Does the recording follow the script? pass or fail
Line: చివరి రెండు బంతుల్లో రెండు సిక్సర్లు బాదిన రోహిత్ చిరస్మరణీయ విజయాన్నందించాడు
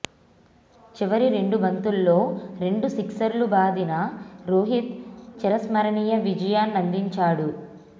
pass